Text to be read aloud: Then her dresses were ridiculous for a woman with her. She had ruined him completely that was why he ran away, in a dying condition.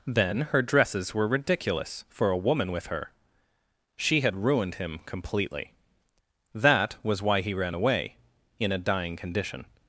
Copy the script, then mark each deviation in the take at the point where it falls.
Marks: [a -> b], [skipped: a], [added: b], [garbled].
Then her dresses were ridiculous for a woman with her. She had ruined him completely that was why he ran away, in a dying condition.